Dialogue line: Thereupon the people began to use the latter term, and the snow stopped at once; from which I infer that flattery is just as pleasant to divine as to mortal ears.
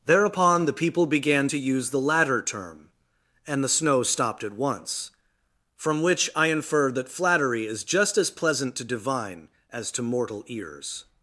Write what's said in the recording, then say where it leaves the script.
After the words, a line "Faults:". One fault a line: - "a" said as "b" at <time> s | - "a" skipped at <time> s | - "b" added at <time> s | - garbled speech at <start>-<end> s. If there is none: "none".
Thereupon the people began to use the latter term, and the snow stopped at once; from which I infer that flattery is just as pleasant to divine as to mortal ears.
Faults:
none